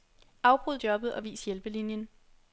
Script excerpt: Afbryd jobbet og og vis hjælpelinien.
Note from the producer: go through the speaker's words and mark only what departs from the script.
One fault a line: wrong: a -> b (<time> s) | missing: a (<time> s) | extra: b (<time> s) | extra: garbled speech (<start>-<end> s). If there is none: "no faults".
missing: og (1.3 s)